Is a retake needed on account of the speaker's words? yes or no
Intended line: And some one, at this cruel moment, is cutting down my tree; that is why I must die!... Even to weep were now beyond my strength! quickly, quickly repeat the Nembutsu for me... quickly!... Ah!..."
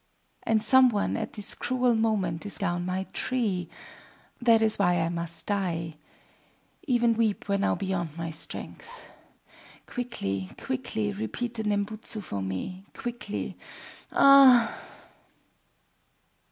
yes